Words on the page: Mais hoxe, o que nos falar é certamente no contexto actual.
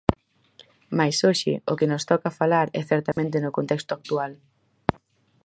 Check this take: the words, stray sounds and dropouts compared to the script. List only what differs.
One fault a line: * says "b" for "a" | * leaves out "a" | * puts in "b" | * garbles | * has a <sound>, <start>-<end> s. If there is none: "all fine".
* puts in "toca"
* has a dropout, 3.1-3.2 s